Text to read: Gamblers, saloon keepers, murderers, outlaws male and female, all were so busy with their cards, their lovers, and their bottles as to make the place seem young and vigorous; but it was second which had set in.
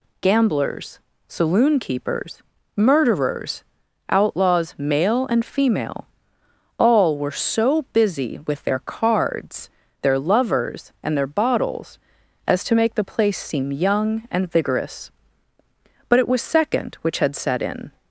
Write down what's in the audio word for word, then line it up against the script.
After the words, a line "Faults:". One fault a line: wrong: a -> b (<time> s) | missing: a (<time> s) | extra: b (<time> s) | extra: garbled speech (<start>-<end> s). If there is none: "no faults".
Gamblers, saloon keepers, murderers, outlaws male and female, all were so busy with their cards, their lovers, and their bottles as to make the place seem young and vigorous; but it was second which had set in.
Faults:
no faults